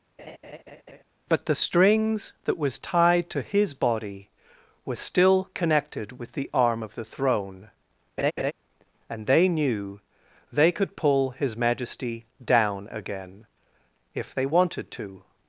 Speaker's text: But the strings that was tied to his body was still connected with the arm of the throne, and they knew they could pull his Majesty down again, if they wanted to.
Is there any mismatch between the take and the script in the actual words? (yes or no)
no